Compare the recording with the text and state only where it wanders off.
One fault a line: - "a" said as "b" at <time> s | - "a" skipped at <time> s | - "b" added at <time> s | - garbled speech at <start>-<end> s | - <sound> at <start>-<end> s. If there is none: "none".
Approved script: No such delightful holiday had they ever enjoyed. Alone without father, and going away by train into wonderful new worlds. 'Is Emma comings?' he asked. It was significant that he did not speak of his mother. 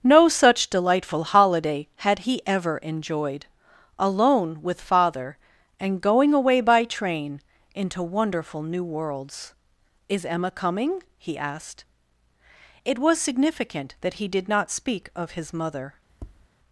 - "they" said as "he" at 2.2 s
- "without" said as "with" at 4.6 s
- "comings" said as "coming" at 10.5 s
- tap at 16.1-16.5 s